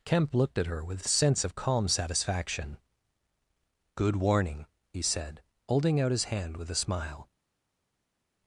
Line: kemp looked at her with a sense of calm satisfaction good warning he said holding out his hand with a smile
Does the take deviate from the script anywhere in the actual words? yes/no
no